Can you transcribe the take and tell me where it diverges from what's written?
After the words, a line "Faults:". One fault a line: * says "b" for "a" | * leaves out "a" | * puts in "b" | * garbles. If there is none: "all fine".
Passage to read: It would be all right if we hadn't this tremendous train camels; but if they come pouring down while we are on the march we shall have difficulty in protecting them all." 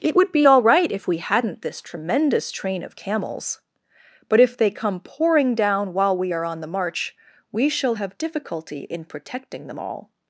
It would be all right if we hadn't this tremendous train of camels; but if they come pouring down while we are on the march we shall have difficulty in protecting them all."
Faults:
* puts in "of"